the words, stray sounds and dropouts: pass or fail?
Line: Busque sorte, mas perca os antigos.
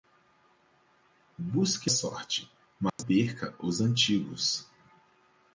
fail